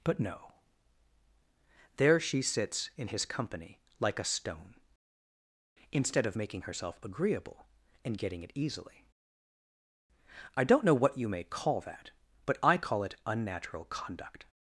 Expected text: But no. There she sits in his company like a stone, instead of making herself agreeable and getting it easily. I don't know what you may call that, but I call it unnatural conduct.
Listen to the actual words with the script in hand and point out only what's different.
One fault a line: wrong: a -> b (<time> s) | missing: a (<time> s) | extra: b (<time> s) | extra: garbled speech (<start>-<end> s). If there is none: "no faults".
no faults